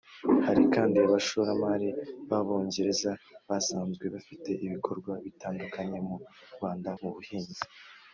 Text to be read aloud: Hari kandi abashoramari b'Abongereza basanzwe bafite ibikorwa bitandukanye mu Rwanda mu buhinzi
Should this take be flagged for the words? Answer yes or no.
no